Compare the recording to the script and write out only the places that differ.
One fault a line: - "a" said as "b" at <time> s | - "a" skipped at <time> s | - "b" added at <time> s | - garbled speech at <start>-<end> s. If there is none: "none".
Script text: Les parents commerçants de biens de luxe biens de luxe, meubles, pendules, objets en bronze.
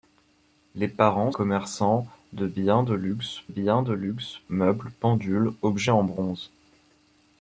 none